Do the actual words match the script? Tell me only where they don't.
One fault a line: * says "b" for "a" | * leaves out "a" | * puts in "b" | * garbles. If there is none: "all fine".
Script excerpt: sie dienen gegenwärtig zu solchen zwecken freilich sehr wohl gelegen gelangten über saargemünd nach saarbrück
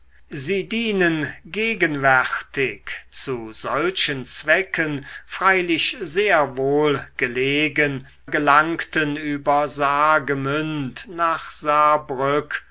all fine